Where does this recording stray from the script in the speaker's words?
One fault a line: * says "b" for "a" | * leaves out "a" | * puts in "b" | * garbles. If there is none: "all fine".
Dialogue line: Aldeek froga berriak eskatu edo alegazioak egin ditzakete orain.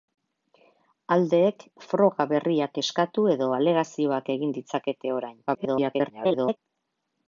* garbles